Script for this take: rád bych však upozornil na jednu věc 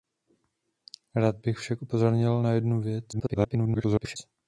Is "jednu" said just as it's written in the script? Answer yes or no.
yes